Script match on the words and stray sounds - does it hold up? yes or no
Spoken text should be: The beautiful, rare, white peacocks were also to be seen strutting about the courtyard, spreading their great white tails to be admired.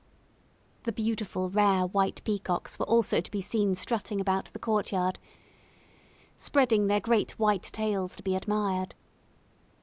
yes